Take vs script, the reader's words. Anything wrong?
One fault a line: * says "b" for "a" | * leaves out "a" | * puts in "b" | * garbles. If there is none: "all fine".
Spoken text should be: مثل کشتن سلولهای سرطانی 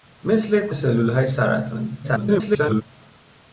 * leaves out "کشتن"
* garbles